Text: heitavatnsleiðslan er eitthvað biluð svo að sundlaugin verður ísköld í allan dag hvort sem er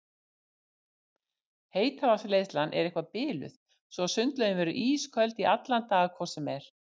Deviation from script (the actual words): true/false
false